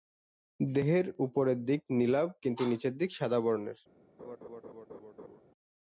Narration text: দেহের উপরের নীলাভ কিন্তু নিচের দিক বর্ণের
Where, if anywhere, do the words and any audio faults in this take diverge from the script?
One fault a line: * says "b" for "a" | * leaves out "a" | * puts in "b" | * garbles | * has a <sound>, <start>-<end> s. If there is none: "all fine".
* puts in "দিক"
* puts in "সাদা"
* has a laugh, 4.2-5.4 s